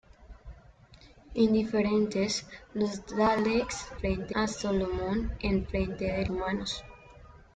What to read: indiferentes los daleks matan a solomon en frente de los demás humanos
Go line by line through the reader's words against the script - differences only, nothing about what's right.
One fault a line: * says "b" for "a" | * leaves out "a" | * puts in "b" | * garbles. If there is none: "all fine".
* says "frente" for "matan"
* leaves out "los demás"